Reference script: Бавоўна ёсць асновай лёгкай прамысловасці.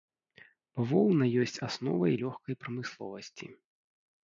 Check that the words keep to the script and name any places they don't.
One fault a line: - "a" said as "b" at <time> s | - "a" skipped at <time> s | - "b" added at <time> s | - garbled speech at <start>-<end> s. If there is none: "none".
none